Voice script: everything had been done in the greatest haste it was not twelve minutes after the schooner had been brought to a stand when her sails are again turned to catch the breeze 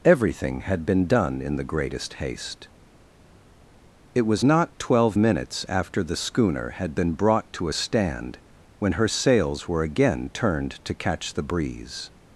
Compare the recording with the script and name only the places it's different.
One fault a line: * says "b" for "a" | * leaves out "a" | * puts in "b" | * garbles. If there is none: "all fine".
* says "were" for "are"